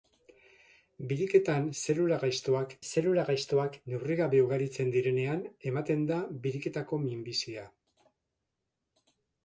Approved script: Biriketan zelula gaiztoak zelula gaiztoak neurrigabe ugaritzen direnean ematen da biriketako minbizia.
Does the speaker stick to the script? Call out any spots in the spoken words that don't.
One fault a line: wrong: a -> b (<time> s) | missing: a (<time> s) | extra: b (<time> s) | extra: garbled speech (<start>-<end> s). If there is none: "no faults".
no faults